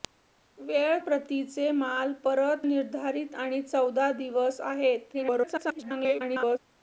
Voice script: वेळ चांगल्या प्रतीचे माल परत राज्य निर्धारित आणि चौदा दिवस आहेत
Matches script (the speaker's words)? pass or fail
fail